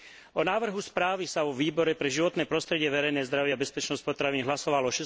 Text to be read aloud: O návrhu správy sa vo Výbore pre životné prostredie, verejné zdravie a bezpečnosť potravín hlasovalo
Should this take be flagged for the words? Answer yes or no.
no